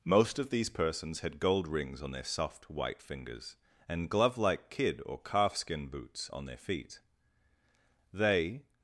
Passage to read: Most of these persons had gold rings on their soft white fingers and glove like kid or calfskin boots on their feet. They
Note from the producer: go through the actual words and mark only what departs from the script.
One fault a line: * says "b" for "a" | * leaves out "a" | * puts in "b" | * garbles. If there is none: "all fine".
all fine